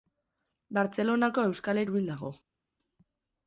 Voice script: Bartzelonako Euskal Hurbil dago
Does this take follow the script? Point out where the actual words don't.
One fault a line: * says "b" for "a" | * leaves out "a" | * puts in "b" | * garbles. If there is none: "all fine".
all fine